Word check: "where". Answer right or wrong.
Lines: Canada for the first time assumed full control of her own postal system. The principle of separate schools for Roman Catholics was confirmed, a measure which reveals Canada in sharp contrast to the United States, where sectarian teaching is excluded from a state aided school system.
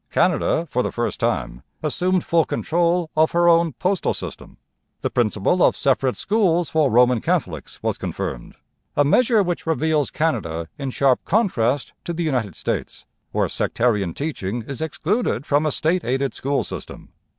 right